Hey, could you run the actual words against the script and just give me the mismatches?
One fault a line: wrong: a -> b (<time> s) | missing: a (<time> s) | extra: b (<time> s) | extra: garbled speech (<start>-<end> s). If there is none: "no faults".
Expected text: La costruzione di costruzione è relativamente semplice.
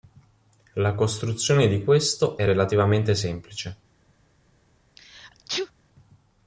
wrong: costruzione -> questo (1.8 s)